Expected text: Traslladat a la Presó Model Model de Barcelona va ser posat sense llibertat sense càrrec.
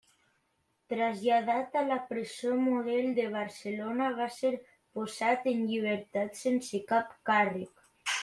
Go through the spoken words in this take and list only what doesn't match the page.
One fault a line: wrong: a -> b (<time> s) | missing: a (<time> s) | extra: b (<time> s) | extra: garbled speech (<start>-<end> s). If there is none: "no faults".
missing: Model (3.1 s)
wrong: sense -> en (5.5 s)
extra: cap (6.9 s)